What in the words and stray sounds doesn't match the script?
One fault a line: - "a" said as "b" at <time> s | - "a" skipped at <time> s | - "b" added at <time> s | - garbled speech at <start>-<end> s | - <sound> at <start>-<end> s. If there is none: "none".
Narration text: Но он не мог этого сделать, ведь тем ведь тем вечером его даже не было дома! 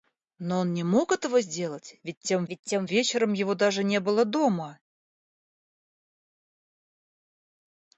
none